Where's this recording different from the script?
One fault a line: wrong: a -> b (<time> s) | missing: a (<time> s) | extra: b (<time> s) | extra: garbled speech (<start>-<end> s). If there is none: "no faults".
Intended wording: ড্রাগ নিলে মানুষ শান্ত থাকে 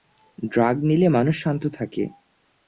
no faults